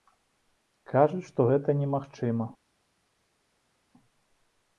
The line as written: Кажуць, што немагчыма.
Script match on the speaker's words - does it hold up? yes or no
no